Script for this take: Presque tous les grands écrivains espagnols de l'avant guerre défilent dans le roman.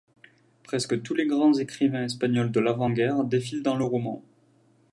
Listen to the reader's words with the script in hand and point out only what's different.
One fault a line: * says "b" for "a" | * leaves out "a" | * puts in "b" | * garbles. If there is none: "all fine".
all fine